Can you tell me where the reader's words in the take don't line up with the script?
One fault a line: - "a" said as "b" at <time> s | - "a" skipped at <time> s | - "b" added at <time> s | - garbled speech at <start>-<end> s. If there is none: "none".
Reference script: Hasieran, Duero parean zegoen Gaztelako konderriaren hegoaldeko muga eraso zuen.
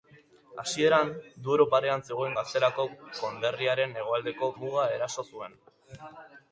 none